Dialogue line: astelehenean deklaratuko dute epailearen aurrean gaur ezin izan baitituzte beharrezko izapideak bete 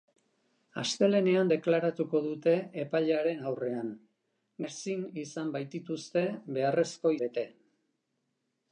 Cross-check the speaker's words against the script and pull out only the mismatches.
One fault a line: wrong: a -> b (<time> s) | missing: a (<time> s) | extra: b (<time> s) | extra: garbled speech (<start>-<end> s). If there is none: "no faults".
missing: gaur (3.9 s)
missing: izapideak (7.2 s)